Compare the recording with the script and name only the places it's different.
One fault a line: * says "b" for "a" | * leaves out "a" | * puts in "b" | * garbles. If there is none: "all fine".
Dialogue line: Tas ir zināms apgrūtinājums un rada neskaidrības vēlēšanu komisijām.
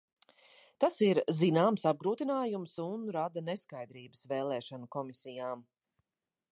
all fine